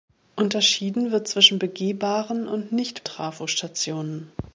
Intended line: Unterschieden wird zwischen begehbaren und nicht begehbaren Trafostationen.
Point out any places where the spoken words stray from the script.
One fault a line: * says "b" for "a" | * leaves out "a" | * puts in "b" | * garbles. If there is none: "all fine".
* leaves out "begehbaren"